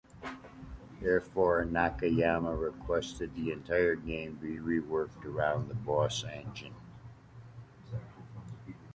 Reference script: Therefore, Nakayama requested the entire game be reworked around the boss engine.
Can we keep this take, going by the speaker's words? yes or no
yes